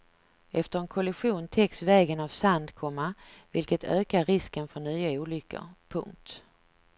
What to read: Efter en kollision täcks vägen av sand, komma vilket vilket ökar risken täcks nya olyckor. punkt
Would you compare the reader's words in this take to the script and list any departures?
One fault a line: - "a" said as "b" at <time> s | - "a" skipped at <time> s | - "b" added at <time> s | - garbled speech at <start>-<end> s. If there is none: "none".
- "vilket" skipped at 3.8 s
- "täcks" said as "för" at 4.7 s